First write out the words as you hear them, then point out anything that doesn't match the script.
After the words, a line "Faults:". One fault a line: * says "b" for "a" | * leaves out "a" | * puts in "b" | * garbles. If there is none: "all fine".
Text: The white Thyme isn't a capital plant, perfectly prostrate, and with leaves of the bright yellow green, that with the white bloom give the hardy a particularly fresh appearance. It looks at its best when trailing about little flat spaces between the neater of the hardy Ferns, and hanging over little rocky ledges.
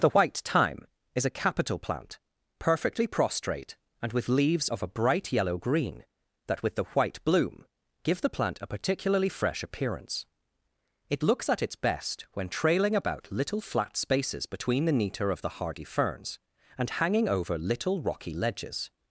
The white Thyme is a capital plant, perfectly prostrate, and with leaves of a bright yellow green, that with the white bloom give the plant a particularly fresh appearance. It looks at its best when trailing about little flat spaces between the neater of the hardy Ferns, and hanging over little rocky ledges.
Faults:
* says "is" for "isn't"
* says "a" for "the"
* says "plant" for "hardy"